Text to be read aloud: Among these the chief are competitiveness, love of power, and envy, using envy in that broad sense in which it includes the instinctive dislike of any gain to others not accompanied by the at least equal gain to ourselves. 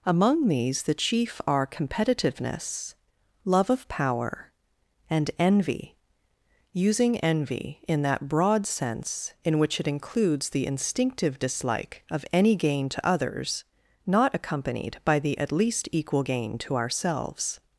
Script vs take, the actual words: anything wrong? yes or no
no